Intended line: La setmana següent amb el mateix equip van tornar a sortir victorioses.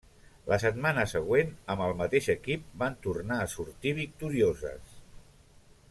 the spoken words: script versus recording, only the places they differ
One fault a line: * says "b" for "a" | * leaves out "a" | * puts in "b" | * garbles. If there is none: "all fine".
all fine